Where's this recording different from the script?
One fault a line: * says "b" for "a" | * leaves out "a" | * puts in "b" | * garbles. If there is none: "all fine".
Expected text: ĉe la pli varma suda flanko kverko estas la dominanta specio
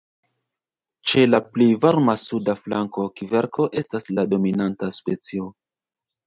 all fine